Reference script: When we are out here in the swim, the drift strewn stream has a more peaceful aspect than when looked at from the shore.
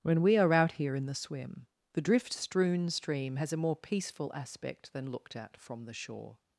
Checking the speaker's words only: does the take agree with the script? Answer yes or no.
no